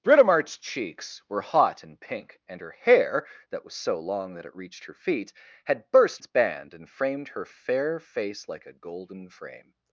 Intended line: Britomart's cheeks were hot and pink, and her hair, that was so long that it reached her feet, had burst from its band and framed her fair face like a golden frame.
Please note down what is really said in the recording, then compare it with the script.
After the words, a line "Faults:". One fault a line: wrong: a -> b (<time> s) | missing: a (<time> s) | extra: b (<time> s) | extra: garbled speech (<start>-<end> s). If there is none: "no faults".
Britomart's cheeks were hot and pink, and her hair, that was so long that it reached her feet, had burst its band and framed her fair face like a golden frame.
Faults:
missing: from (6.2 s)